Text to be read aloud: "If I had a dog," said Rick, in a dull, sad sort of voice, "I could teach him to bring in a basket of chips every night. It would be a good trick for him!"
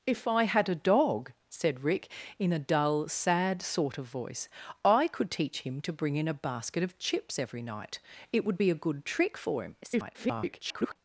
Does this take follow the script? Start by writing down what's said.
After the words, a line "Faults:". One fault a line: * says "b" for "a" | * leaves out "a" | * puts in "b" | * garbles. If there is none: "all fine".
"If I had a dog," said Rick, in a dull, sad sort of voice, "I could teach him to bring in a basket of chips every night. It would be a good trick for him!" [garbled]
Faults:
* garbles